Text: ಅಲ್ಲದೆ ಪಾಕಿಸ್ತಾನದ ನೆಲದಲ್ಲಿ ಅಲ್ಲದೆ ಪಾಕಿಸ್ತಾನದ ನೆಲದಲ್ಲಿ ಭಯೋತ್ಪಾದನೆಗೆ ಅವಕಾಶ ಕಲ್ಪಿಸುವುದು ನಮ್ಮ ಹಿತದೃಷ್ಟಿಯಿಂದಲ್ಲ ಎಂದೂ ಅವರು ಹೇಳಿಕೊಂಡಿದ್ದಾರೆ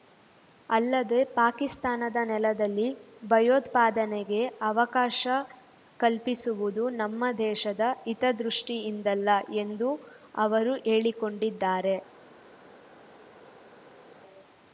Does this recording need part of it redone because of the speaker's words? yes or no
yes